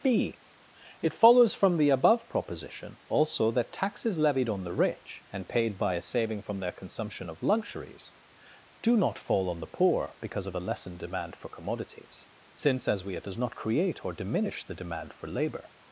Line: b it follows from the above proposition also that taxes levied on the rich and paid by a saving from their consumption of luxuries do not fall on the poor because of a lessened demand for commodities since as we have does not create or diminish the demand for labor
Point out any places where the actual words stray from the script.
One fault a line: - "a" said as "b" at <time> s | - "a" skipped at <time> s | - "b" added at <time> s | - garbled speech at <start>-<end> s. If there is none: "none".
none